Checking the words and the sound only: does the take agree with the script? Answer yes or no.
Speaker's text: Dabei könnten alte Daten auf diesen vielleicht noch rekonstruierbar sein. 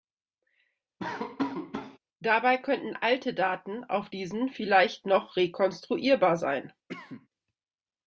no